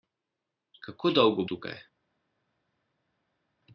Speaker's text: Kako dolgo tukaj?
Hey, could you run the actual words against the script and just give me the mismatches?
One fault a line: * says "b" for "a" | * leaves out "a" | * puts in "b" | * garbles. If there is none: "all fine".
all fine